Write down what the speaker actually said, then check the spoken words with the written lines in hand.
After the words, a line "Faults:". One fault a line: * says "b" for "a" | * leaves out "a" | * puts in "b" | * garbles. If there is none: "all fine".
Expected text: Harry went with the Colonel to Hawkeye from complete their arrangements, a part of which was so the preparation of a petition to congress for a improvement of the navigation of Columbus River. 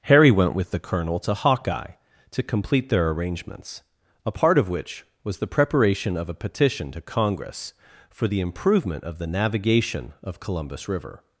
Harry went with the Colonel to Hawkeye to complete their arrangements, a part of which was the preparation of a petition to congress for the improvement of the navigation of Columbus River.
Faults:
* says "to" for "from"
* leaves out "so"
* says "the" for "a"